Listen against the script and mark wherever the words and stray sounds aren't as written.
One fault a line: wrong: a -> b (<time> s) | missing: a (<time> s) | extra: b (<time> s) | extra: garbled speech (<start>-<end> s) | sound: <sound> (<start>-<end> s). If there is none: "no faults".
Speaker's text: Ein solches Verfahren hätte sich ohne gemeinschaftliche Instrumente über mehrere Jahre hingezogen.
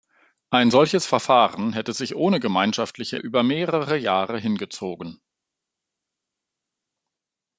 missing: Instrumente (3.2 s)